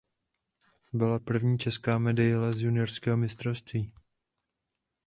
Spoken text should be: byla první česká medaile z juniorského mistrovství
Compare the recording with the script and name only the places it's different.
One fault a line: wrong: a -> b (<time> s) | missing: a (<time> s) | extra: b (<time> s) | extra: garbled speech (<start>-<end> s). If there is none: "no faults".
no faults